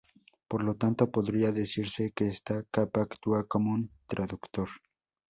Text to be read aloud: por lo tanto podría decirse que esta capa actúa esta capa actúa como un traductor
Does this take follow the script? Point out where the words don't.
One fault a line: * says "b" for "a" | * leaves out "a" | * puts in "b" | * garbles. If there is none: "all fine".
* leaves out "esta capa actúa"